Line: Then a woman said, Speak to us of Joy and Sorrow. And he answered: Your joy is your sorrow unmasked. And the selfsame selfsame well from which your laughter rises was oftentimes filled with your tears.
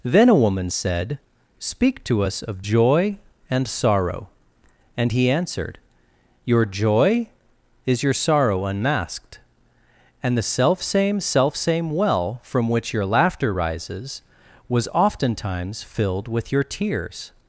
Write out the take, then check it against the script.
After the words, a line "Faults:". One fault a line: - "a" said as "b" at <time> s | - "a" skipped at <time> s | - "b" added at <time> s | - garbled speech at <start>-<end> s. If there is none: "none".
Then a woman said, Speak to us of Joy and Sorrow. And he answered: Your joy is your sorrow unmasked. And the selfsame selfsame well from which your laughter rises was oftentimes filled with your tears.
Faults:
none